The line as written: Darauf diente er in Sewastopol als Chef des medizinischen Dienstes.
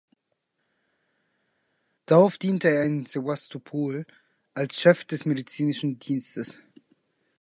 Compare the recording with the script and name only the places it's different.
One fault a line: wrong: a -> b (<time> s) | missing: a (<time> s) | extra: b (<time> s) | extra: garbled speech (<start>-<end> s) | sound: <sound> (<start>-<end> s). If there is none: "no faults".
no faults